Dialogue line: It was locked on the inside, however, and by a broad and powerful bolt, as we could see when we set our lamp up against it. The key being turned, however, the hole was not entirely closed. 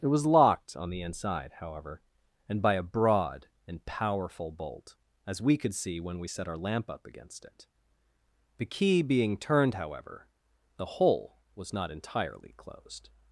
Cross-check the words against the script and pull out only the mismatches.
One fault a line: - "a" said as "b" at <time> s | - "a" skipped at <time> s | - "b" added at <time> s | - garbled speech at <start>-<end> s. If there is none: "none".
none